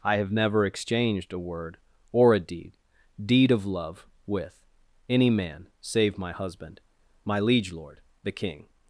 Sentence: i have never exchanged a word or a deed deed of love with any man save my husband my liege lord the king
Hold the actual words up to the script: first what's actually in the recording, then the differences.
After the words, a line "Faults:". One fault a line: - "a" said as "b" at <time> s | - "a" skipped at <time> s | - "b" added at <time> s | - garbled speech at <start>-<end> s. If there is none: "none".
i have never exchanged a word or a deed deed of love with any man save my husband my liege lord the king
Faults:
none